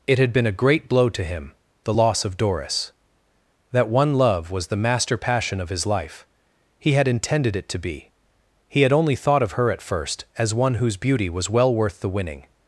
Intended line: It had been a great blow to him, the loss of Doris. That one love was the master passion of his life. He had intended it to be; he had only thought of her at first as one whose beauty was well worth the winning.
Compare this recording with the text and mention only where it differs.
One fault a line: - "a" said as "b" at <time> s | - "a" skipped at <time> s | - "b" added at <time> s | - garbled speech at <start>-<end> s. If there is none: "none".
none